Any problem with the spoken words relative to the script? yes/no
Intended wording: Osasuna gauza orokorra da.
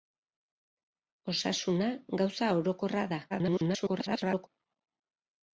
yes